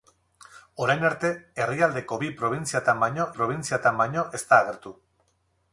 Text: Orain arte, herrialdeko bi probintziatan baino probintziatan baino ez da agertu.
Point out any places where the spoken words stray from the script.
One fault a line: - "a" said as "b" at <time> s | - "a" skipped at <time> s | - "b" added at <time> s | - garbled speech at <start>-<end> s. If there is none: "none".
none